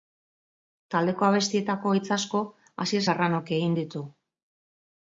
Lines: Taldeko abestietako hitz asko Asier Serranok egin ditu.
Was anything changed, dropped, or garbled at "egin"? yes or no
no